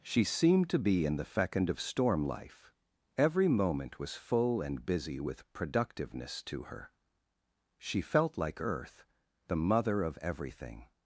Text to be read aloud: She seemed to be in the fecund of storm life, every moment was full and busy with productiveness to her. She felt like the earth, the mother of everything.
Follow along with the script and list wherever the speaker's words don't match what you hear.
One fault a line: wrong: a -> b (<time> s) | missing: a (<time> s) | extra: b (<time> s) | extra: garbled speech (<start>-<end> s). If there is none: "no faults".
missing: the (8.6 s)